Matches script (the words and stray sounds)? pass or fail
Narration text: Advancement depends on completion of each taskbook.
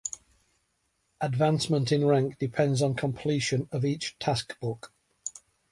fail